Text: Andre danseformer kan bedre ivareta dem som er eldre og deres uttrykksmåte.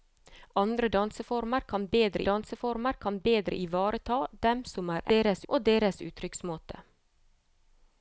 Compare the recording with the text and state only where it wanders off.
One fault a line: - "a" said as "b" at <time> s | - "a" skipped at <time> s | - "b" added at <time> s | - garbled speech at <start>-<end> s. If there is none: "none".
- "danseformer kan bedre" added at 2.3 s
- "eldre" said as "deres" at 5.1 s